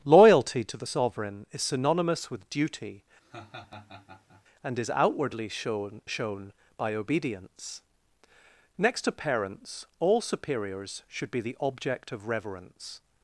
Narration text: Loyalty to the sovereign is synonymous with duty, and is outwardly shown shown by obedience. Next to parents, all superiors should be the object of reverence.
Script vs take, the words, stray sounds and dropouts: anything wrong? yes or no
yes